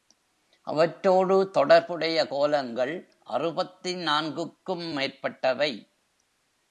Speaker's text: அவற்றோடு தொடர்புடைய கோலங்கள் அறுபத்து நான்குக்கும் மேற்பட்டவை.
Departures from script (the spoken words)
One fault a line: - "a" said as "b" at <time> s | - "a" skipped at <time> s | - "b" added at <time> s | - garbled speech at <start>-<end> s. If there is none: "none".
none